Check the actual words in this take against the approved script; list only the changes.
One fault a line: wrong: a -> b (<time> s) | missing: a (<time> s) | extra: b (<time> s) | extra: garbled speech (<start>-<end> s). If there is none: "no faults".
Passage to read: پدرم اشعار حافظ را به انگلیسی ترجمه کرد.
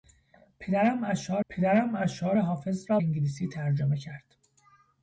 extra: پدرم اشعار (1.5 s)
missing: به (3.0 s)